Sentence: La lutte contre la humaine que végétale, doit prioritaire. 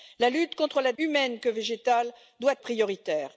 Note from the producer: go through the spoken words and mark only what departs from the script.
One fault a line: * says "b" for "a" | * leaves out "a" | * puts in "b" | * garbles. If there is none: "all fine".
all fine